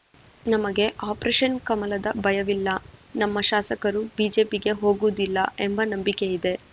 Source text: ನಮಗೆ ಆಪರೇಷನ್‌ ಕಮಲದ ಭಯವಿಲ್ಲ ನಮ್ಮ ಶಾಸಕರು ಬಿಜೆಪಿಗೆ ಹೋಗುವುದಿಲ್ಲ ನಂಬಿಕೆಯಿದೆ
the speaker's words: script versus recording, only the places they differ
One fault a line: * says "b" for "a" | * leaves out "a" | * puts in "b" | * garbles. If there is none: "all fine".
* puts in "ಎಂಬ"